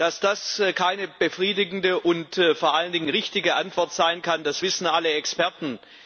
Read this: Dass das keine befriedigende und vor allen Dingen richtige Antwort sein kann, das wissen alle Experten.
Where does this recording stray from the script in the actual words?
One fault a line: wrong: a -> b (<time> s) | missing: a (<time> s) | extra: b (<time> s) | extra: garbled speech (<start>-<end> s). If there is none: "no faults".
no faults